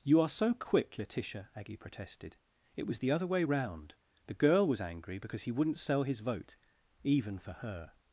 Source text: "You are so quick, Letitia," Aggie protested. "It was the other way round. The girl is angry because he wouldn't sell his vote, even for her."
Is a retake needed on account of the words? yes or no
yes